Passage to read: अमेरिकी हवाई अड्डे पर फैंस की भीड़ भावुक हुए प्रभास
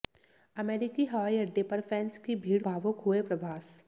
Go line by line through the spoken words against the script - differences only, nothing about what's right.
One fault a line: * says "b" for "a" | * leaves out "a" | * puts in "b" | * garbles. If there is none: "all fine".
all fine